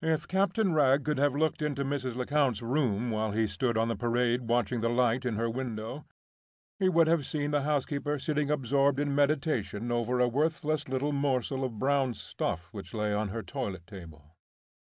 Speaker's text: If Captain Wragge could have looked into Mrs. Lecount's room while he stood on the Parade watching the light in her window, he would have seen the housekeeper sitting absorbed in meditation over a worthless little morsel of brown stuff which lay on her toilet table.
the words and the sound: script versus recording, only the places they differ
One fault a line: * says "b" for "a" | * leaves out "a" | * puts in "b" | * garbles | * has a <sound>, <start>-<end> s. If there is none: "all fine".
all fine